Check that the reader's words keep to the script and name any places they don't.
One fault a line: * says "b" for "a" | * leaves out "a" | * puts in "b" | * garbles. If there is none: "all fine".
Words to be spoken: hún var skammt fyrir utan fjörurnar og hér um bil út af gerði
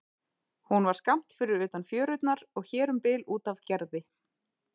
all fine